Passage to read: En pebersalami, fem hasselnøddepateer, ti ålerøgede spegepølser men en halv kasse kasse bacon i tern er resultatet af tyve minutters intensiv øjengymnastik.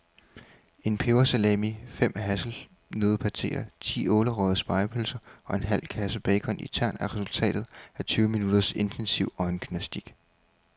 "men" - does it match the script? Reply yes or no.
no